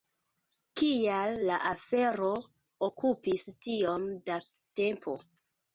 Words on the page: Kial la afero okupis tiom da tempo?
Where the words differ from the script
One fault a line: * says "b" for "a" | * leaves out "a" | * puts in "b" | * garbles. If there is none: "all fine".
all fine